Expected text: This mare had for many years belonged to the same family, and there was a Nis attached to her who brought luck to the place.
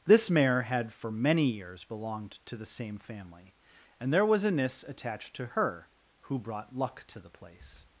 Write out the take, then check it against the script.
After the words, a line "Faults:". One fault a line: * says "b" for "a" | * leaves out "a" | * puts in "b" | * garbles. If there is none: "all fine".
This mare had for many years belonged to the same family, and there was a Nis attached to her who brought luck to the place.
Faults:
all fine